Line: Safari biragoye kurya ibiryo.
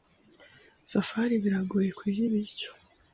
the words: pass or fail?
pass